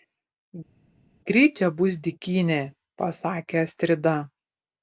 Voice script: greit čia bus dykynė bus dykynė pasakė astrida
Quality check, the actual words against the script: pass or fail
fail